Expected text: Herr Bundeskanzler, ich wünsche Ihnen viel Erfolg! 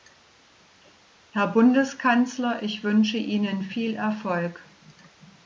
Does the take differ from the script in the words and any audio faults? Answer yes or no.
no